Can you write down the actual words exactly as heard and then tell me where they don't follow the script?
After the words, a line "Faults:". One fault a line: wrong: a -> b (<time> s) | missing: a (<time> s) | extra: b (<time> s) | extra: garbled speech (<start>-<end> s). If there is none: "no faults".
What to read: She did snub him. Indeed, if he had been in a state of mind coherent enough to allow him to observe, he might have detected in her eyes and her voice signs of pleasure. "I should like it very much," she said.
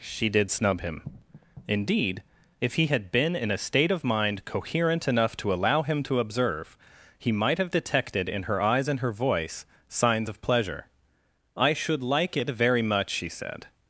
She did snub him. Indeed, if he had been in a state of mind coherent enough to allow him to observe, he might have detected in her eyes and her voice signs of pleasure. "I should like it very much," she said.
Faults:
no faults